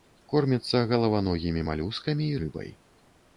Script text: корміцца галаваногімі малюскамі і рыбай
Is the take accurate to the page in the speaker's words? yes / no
yes